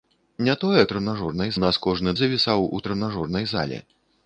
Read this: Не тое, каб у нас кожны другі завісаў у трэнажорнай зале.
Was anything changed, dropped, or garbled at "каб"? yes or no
yes